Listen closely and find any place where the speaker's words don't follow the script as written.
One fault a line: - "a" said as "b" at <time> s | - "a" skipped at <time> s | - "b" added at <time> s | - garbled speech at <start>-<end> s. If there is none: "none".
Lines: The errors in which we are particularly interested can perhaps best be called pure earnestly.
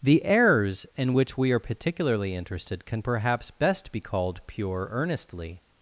none